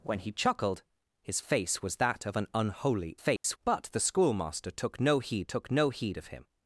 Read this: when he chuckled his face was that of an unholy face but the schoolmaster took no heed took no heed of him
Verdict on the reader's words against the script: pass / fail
pass